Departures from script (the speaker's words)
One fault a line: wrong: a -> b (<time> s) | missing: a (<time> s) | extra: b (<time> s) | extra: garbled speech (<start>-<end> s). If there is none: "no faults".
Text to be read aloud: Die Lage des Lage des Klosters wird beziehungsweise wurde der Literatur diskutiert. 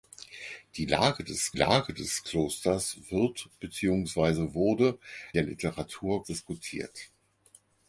no faults